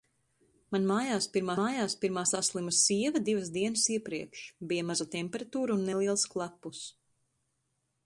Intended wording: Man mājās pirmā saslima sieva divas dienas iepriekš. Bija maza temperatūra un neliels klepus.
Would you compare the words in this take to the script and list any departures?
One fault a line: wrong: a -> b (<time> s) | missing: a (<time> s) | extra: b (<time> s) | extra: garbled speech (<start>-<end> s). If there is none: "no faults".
extra: mājās pirmā (1.6 s)